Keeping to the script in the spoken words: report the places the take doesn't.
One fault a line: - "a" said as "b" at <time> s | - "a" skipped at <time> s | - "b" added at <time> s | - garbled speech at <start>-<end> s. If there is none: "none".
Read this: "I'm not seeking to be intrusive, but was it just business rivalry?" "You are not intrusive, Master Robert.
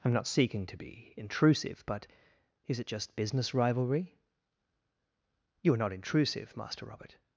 - "was" said as "is" at 2.7 s